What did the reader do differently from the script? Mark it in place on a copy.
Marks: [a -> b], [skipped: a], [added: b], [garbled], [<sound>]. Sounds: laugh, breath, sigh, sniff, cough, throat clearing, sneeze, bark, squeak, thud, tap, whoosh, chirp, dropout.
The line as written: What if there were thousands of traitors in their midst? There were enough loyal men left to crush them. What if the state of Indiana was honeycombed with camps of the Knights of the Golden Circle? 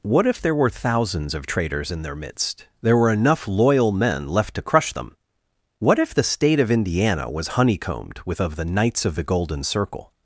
What if there were thousands of traitors in their midst? There were enough loyal men left to crush them. What if the state of Indiana was honeycombed with [skipped: camps] of the Knights of the Golden Circle?